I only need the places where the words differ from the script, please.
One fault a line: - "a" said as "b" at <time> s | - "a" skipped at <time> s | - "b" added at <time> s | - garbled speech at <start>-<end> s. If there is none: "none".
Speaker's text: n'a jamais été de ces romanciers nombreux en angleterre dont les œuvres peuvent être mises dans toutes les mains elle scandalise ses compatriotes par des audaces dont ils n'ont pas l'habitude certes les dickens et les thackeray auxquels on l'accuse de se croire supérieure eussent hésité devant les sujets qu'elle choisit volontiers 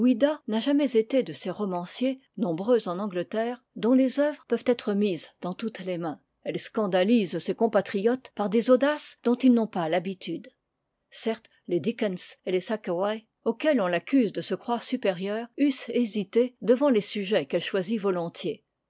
none